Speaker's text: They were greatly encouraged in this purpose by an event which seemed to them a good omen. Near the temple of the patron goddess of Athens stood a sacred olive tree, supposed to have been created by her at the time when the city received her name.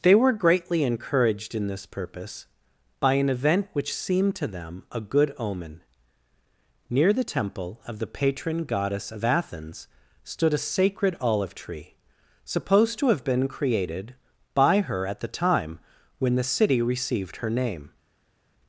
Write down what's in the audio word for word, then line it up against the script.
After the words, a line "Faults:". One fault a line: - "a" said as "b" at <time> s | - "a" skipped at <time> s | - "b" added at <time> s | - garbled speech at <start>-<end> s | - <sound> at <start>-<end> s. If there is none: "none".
They were greatly encouraged in this purpose by an event which seemed to them a good omen. Near the temple of the patron goddess of Athens stood a sacred olive tree, supposed to have been created by her at the time when the city received her name.
Faults:
none